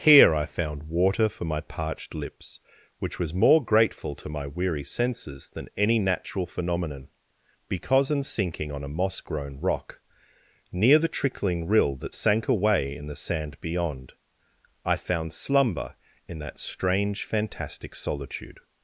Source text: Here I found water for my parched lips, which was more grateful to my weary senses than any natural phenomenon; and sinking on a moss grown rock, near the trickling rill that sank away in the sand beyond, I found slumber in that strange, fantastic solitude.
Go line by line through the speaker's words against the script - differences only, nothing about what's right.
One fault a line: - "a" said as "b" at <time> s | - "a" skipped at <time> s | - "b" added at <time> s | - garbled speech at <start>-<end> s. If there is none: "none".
- "and" said as "because in" at 7.7 s